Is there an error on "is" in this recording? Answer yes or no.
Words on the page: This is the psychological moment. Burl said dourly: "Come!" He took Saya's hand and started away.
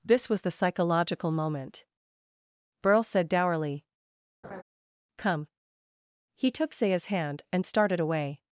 yes